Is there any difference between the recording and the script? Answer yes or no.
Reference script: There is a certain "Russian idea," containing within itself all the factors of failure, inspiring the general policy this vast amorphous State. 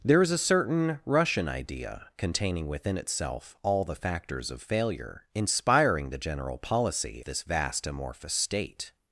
no